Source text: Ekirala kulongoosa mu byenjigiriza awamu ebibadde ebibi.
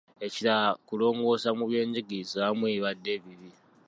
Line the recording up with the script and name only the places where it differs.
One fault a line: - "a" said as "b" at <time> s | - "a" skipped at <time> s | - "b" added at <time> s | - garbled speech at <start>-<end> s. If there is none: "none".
none